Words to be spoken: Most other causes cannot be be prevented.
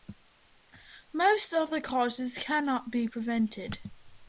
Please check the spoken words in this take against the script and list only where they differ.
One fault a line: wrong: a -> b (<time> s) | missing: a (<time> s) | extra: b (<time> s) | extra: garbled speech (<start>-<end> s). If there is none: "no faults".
missing: be (3.1 s)